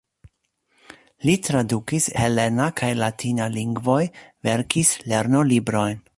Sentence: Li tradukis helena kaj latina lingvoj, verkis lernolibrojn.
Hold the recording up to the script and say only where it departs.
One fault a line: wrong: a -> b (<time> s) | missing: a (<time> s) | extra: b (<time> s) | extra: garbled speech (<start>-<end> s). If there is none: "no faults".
no faults